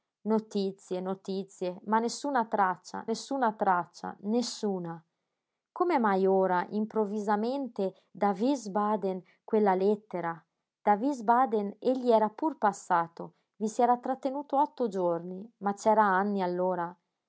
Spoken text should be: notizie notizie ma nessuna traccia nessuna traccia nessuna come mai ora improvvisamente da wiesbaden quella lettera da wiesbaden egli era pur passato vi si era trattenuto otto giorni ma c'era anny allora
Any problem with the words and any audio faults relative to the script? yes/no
no